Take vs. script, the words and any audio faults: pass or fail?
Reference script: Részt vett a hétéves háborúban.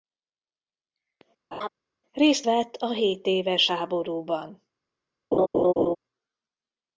fail